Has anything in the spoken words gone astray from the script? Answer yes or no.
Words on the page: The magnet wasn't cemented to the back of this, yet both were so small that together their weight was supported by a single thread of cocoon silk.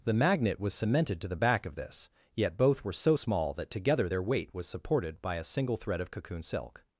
yes